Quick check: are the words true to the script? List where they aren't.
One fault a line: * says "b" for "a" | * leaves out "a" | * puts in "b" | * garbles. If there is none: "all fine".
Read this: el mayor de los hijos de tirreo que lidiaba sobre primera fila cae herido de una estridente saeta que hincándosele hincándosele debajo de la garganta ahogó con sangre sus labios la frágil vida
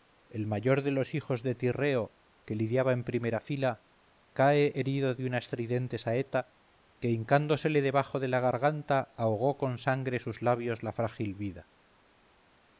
* says "en" for "sobre"
* leaves out "hincándosele"